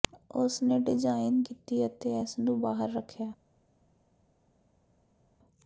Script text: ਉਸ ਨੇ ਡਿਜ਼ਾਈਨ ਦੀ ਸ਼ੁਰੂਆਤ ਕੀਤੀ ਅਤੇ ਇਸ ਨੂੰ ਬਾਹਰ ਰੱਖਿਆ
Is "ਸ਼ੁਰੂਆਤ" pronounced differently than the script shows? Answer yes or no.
yes